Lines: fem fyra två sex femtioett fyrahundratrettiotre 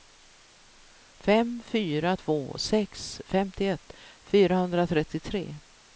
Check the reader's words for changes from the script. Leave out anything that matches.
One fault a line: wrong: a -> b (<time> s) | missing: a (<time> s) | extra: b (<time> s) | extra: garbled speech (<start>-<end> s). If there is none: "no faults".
no faults